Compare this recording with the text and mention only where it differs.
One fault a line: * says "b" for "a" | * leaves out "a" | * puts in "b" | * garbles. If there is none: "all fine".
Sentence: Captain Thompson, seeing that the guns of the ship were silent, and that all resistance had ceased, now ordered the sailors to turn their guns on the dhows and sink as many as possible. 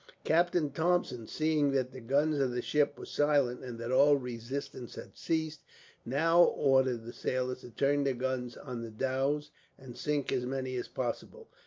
all fine